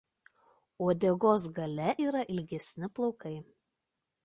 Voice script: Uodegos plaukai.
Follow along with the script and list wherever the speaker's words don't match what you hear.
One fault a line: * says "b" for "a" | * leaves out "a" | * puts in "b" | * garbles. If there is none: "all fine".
* puts in "gale yra ilgesni"